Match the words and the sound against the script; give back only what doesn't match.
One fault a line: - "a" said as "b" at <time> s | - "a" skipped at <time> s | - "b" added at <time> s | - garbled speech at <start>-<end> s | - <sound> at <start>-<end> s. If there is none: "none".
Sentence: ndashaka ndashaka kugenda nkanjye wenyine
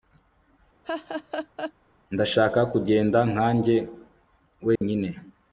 - laugh at 0.8-1.7 s
- "ndashaka" skipped at 2.6 s
- dropout at 4.8-4.8 s